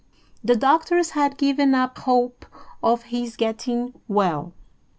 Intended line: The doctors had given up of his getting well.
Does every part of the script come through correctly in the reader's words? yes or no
no